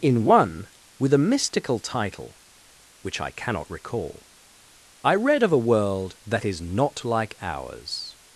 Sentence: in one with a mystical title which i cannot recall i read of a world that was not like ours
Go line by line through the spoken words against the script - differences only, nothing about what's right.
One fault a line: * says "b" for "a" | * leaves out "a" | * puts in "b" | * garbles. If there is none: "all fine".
* says "is" for "was"